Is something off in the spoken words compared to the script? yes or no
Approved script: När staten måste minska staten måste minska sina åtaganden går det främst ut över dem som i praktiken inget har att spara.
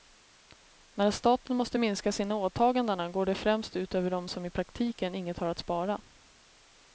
yes